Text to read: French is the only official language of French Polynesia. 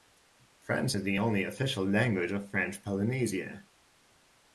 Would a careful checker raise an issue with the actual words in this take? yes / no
no